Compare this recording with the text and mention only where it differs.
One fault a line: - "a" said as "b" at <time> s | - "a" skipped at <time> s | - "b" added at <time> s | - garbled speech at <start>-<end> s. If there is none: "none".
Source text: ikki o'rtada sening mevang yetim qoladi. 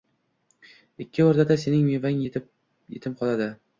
none